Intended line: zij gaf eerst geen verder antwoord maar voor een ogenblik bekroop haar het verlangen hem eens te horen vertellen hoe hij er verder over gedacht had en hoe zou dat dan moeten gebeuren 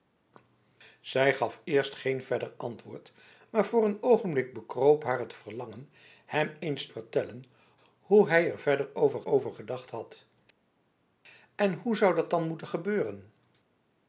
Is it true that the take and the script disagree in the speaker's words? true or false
true